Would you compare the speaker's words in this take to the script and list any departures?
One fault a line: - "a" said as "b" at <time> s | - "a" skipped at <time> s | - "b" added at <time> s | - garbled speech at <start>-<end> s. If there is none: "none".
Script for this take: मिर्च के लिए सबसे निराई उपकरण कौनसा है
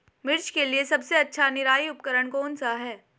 - "अच्छा" added at 1.2 s